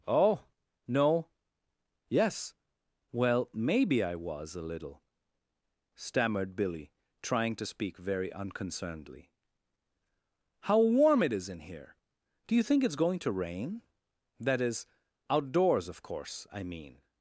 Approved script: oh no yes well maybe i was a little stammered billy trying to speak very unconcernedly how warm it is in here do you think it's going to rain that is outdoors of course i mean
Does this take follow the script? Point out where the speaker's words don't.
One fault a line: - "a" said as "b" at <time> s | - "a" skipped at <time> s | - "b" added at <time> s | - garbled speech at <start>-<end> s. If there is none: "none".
none